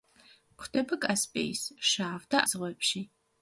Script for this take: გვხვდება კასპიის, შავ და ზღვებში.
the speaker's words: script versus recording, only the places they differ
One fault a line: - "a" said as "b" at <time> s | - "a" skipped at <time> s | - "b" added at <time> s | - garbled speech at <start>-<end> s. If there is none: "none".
none